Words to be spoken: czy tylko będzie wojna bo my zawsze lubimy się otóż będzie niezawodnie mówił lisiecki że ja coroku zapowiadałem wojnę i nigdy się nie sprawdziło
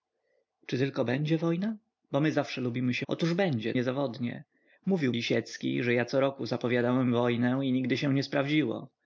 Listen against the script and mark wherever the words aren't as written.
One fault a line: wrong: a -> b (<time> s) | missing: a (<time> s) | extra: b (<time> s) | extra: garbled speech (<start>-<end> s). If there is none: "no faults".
no faults